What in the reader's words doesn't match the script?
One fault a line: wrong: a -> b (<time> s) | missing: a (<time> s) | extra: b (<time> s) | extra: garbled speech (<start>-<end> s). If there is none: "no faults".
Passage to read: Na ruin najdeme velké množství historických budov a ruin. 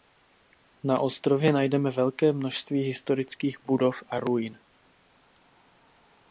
wrong: ruin -> ostrově (1.0 s)